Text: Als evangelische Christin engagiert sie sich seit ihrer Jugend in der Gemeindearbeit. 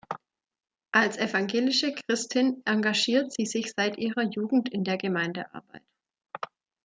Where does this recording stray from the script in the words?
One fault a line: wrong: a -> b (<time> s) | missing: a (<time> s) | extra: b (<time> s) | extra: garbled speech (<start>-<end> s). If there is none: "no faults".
no faults